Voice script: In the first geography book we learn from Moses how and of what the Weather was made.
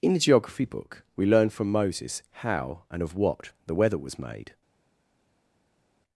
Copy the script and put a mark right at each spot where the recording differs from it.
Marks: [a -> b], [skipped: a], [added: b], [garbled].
In the [skipped: first] geography book we learn from Moses how and of what the Weather was made.